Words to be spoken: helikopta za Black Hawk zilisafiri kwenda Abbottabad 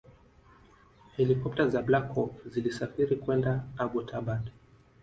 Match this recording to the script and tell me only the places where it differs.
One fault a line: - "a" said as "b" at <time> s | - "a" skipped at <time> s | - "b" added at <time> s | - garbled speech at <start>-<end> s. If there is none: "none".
none